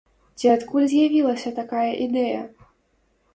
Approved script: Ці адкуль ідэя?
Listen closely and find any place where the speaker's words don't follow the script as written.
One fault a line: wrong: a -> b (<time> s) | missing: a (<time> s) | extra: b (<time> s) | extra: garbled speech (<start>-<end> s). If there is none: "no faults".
extra: з'явілася такая (0.9 s)